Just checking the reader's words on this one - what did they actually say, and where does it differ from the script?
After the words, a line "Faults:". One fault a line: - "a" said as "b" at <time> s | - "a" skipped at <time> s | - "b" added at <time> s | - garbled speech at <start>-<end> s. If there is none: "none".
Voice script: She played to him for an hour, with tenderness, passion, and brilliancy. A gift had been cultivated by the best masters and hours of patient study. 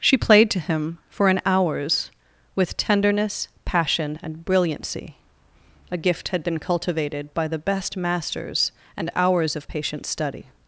She played to him for an hours, with tenderness, passion, and brilliancy. A gift had been cultivated by the best masters and hours of patient study.
Faults:
- "hour" said as "hours" at 1.4 s